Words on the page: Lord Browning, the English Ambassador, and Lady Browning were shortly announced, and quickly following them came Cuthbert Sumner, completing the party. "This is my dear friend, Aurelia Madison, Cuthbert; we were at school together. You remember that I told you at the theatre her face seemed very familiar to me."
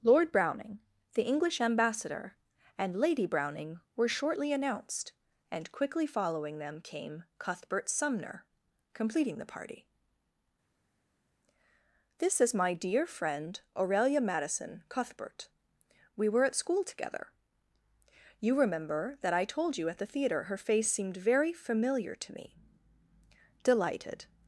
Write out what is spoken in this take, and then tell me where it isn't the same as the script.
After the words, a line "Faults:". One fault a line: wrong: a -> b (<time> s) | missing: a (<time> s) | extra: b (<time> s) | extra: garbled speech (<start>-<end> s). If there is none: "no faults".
Lord Browning, the English Ambassador, and Lady Browning were shortly announced, and quickly following them came Cuthbert Sumner, completing the party. "This is my dear friend, Aurelia Madison, Cuthbert; we were at school together. You remember that I told you at the theatre her face seemed very familiar to me." "Delighted
Faults:
extra: Delighted (23.6 s)